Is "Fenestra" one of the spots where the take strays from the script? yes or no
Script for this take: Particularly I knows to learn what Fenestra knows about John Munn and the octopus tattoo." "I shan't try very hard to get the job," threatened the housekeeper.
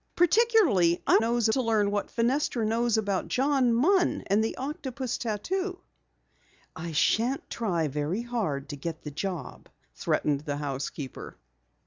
no